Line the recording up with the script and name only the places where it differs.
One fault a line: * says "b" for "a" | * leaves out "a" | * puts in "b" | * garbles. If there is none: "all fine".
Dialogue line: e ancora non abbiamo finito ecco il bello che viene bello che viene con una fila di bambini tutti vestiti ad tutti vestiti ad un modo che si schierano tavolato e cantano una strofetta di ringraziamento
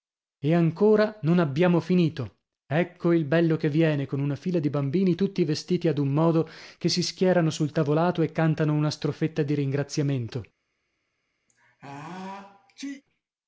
* leaves out "bello che viene"
* leaves out "tutti vestiti ad"
* puts in "sul"